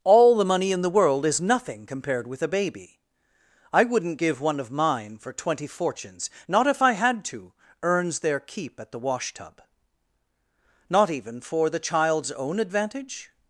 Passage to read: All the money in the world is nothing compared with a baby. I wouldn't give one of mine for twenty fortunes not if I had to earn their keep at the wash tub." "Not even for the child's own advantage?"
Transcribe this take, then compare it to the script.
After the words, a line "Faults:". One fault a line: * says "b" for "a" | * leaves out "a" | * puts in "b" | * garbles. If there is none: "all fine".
All the money in the world is nothing compared with a baby. I wouldn't give one of mine for twenty fortunes not if I had to earns their keep at the wash tub." "Not even for the child's own advantage?"
Faults:
* says "earns" for "earn"